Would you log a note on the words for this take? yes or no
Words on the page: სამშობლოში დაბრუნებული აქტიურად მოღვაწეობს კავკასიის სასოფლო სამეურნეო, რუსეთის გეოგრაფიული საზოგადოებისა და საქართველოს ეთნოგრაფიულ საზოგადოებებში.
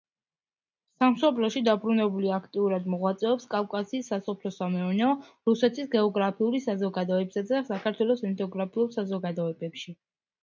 no